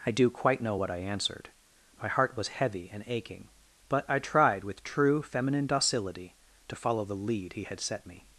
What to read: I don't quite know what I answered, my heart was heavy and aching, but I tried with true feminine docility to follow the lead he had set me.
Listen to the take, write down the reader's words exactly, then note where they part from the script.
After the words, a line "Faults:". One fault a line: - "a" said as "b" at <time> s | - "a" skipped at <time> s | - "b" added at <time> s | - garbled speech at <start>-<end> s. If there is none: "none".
I do quite know what I answered, my heart was heavy and aching, but I tried with true feminine docility to follow the lead he had set me.
Faults:
- "don't" said as "do" at 0.1 s